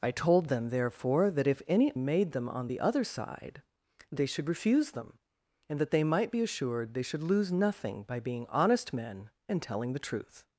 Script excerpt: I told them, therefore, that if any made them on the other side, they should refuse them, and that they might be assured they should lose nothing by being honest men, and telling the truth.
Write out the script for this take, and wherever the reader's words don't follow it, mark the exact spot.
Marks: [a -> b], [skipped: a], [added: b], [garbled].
I told them, therefore, that if any made them on the other side, they should refuse them, and that they might be assured they should lose nothing by being honest men, and telling the truth.